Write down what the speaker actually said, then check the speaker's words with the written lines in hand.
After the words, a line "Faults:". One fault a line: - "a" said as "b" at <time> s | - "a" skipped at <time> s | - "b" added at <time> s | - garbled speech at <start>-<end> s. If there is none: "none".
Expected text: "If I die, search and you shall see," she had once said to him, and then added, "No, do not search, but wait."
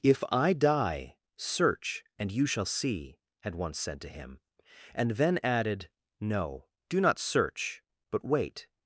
"If I die, search and you shall see," had once said to him, and then added, "No, do not search, but wait."
Faults:
- "she" skipped at 3.2 s